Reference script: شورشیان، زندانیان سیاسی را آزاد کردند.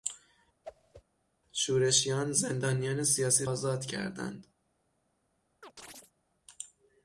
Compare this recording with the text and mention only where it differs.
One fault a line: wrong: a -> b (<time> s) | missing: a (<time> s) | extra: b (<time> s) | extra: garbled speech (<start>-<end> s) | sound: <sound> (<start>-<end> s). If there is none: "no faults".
sound: whoosh (0.6-1.0 s)
missing: را (3.5 s)
sound: chirp (5.6-6.1 s)